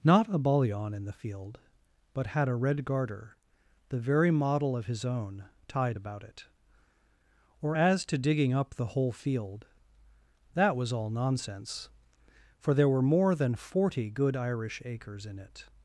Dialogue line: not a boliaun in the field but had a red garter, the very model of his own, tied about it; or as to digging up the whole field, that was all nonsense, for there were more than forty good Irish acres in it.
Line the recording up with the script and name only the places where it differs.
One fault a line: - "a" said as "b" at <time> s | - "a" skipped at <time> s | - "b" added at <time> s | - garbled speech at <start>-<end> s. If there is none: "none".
none